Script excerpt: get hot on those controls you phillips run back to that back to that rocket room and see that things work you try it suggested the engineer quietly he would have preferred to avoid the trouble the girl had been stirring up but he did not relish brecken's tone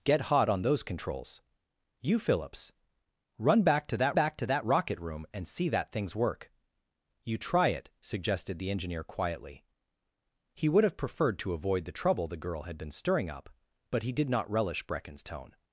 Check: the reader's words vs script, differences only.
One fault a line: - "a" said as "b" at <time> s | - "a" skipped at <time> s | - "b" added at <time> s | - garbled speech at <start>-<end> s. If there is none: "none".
none